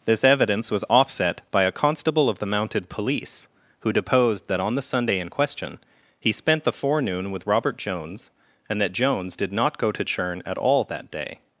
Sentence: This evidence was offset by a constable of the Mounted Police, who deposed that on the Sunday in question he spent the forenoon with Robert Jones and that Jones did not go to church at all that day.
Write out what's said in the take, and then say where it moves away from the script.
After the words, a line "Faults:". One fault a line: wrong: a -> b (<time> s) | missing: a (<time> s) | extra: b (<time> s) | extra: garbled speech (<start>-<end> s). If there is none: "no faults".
This evidence was offset by a constable of the Mounted Police, who deposed that on the Sunday in question he spent the forenoon with Robert Jones and that Jones did not go to churn at all that day.
Faults:
wrong: church -> churn (10.0 s)